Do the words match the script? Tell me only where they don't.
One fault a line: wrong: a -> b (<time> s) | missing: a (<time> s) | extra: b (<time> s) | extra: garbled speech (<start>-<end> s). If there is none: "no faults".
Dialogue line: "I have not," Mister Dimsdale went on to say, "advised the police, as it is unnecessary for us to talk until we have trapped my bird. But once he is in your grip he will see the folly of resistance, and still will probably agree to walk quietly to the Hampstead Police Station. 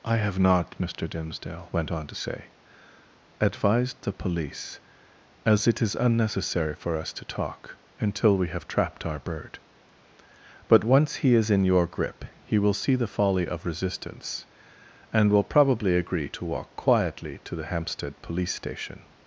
wrong: my -> our (9.1 s)
missing: still (15.3 s)